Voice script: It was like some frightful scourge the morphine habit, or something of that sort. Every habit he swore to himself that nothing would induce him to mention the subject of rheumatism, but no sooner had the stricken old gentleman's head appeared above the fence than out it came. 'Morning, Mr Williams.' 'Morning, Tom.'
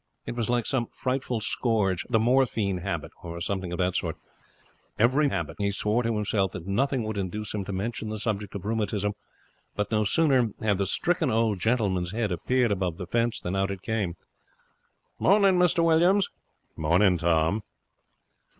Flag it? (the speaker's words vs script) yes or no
no